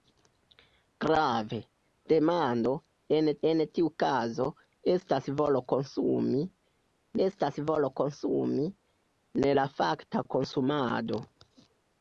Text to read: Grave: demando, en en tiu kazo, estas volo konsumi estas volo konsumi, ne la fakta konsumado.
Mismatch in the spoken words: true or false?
false